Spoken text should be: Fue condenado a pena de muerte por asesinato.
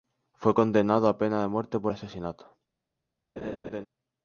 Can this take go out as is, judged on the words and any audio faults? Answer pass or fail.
fail